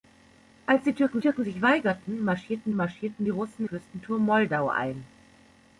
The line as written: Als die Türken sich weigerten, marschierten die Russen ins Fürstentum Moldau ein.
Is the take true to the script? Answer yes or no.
no